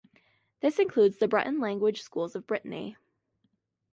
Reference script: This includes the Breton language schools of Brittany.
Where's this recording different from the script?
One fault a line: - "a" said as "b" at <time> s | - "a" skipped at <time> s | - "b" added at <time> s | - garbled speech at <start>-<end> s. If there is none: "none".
none